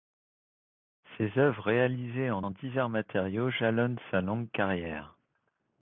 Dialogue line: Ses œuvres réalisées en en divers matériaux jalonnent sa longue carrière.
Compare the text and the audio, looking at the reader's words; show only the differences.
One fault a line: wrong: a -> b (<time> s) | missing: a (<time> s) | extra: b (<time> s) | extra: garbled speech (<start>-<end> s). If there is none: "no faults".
no faults